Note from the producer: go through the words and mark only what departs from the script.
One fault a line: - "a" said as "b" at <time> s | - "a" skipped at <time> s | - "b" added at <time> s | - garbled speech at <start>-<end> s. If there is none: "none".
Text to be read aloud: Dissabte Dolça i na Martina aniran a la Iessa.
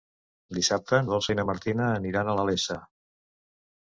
none